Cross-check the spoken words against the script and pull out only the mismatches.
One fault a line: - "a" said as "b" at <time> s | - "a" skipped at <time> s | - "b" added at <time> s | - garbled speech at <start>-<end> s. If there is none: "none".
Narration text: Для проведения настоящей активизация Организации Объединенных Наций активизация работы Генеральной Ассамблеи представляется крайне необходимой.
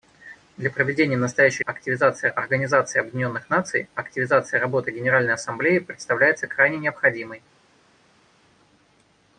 none